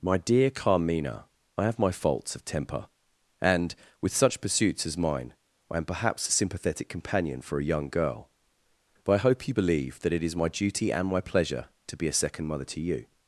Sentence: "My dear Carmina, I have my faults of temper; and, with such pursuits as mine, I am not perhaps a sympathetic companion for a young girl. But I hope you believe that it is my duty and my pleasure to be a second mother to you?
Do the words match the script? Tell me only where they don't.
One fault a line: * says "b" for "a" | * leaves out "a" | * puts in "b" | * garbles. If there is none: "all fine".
* leaves out "not"